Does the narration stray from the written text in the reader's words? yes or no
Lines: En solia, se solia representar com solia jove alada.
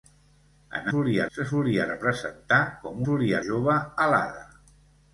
no